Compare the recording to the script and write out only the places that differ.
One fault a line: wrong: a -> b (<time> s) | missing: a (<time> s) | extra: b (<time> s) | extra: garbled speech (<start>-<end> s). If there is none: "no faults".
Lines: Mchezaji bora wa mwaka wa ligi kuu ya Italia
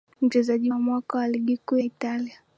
missing: bora (0.7 s)
missing: ya (1.8 s)